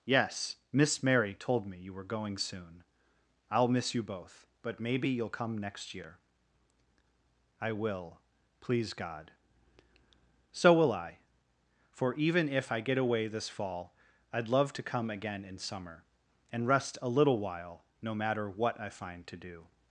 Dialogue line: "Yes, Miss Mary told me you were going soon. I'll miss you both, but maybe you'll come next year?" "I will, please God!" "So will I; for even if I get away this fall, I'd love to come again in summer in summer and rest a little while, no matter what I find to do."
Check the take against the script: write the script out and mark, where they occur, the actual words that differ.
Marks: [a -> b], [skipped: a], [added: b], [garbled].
"Yes, Miss Mary told me you were going soon. I'll miss you both, but maybe you'll come next year?" "I will, please God!" "So will I; for even if I get away this fall, I'd love to come again in summer [skipped: in summer] and rest a little while, no matter what I find to do."